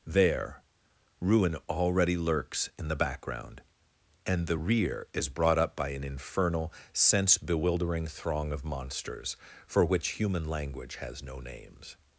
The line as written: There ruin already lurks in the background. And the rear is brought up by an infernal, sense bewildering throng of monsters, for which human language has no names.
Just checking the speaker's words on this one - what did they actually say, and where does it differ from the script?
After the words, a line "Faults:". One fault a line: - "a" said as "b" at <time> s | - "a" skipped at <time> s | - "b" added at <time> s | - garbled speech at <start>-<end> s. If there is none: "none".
There ruin already lurks in the background. And the rear is brought up by an infernal, sense bewildering throng of monsters, for which human language has no names.
Faults:
none